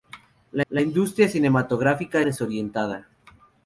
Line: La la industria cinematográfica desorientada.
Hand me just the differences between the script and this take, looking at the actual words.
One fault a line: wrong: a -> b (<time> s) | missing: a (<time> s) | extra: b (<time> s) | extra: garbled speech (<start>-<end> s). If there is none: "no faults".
no faults